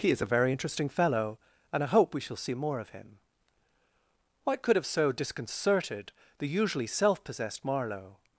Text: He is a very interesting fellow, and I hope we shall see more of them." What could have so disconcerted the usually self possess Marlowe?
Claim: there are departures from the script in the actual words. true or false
true